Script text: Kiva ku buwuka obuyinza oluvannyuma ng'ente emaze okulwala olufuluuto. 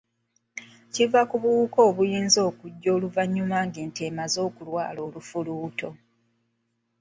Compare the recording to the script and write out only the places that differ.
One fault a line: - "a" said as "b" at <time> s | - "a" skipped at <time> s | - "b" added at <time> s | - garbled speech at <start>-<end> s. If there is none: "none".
- "okujja" added at 2.5 s